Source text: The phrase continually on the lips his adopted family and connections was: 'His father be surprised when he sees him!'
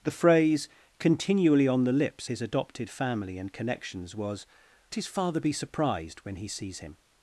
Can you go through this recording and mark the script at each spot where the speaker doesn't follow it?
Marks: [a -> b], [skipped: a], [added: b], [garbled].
The phrase continually on the lips his adopted family and connections was: 'His father be surprised when he sees him!'